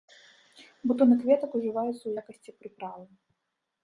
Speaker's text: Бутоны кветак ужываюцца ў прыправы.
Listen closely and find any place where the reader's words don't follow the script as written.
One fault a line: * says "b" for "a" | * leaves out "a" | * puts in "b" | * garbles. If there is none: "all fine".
* puts in "якасці"